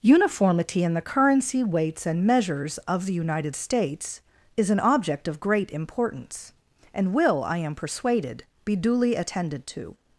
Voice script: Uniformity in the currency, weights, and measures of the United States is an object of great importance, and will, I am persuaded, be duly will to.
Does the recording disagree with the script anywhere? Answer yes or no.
yes